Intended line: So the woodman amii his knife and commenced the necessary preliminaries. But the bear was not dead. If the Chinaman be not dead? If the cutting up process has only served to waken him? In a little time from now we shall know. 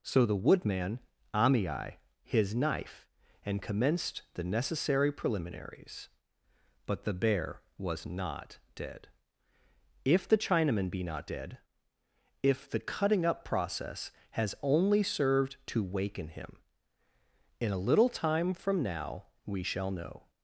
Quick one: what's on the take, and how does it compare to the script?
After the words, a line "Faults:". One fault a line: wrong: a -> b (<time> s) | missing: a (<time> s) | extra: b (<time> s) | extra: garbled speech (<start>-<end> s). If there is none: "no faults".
So the woodman amii his knife and commenced the necessary preliminaries. But the bear was not dead. If the Chinaman be not dead? If the cutting up process has only served to waken him? In a little time from now we shall know.
Faults:
no faults